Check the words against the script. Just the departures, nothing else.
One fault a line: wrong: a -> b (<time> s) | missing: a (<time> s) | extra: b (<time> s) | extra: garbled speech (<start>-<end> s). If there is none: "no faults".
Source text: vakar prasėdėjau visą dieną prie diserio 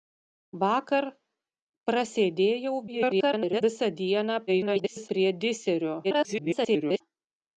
extra: garbled speech (2.9-3.6 s)
extra: garbled speech (4.5-5.1 s)
extra: garbled speech (6.0-7.0 s)